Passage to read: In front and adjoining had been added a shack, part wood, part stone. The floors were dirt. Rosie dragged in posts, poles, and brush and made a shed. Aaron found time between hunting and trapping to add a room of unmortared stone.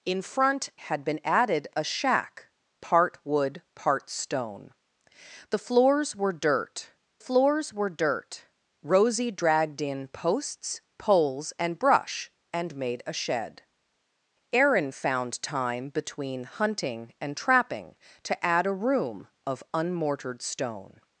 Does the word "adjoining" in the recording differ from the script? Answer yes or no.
yes